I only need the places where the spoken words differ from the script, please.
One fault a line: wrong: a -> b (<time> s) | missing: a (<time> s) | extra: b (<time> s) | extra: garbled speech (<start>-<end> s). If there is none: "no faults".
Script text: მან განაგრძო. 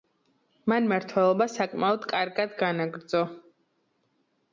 extra: მმართველობა საკმაოდ კარგად (0.8 s)